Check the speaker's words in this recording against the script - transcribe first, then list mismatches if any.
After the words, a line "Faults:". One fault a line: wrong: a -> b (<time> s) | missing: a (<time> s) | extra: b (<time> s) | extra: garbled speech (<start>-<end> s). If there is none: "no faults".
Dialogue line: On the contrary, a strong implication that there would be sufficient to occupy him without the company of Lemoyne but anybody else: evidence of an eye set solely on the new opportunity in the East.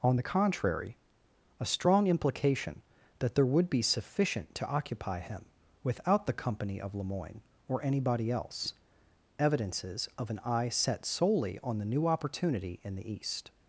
On the contrary, a strong implication that there would be sufficient to occupy him without the company of Lemoyne or anybody else: evidences of an eye set solely on the new opportunity in the East.
Faults:
wrong: but -> or (7.7 s)
wrong: evidence -> evidences (9.4 s)